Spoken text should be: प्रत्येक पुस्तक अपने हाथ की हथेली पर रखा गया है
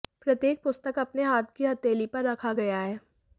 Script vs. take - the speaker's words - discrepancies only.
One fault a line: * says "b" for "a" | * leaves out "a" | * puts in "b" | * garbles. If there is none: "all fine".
all fine